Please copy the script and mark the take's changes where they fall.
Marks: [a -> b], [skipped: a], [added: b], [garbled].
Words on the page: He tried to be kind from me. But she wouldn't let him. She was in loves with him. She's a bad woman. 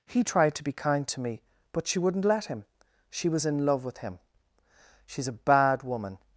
He tried to be kind [from -> to] me. But she wouldn't let him. She was in [loves -> love] with him. She's a bad woman.